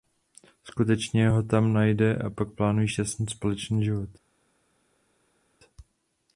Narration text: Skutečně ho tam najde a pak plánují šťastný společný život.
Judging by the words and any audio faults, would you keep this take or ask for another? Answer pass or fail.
pass